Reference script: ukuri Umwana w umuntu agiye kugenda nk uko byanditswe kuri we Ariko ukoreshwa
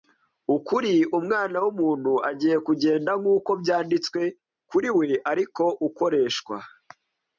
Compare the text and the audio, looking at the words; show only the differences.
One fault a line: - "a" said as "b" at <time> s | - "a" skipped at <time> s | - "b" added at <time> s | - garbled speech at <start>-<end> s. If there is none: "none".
none